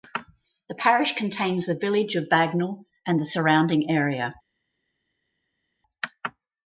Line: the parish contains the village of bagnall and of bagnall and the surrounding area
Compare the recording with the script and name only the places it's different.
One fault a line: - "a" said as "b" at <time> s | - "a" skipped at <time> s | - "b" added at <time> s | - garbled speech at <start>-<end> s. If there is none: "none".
- "of bagnall and" skipped at 3.2 s